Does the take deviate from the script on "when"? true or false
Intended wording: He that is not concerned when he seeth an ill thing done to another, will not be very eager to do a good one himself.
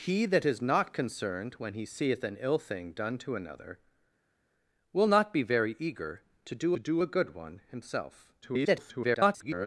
false